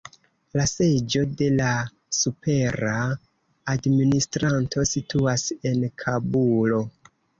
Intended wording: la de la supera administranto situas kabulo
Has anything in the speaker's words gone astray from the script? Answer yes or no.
yes